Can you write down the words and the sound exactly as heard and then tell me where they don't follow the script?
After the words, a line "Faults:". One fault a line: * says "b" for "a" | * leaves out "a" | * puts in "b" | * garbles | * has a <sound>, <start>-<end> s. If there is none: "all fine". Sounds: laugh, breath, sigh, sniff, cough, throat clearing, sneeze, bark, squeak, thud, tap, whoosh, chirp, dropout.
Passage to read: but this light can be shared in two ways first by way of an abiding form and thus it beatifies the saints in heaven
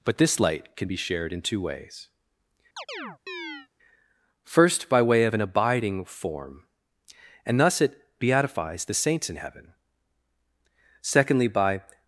but this light can be shared in two ways first by way of an abiding form and thus it beatifies the saints in heaven secondly by
Faults:
* has a chirp, 2.8-3.7 s
* puts in "secondly by"